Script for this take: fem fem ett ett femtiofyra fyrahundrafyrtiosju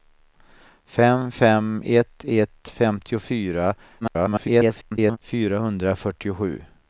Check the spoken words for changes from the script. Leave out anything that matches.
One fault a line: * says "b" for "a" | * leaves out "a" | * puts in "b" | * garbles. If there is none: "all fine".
* garbles